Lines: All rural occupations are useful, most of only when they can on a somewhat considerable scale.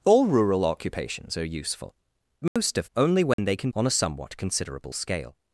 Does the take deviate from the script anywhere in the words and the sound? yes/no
yes